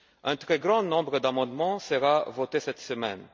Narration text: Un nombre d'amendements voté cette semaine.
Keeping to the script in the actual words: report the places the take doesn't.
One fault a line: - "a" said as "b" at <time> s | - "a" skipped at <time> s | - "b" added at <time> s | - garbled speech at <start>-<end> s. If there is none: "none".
- "très grand" added at 0.3 s
- "sera" added at 1.8 s